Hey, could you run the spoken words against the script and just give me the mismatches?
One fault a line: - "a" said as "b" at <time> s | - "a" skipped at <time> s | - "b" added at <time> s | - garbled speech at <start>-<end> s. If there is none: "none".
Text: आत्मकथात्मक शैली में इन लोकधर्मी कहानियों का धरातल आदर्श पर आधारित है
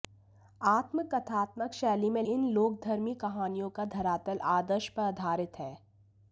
none